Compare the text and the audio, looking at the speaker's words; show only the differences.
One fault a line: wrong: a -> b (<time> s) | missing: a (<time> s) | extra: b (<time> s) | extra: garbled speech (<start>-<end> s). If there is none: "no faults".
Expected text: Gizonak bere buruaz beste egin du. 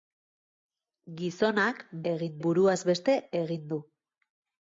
wrong: bere -> egin (2.1 s)